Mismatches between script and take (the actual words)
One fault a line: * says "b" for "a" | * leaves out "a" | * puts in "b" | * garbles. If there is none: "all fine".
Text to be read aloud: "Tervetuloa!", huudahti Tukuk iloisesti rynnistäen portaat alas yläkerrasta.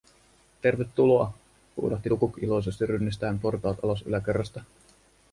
all fine